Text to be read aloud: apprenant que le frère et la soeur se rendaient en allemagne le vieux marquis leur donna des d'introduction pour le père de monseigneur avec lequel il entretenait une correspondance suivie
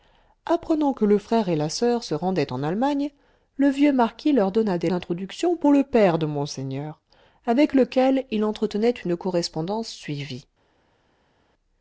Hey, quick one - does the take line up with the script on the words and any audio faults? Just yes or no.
yes